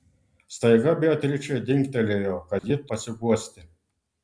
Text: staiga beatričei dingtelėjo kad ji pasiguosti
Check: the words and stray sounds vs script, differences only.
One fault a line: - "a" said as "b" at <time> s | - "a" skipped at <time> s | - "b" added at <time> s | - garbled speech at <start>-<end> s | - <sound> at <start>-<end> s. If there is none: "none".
- dropout at 2.6-2.6 s